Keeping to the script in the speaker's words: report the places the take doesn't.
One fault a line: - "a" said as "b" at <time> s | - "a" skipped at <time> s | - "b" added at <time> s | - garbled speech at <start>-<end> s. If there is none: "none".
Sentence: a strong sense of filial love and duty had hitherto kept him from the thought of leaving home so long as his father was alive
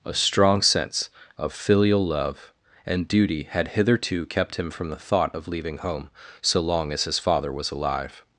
none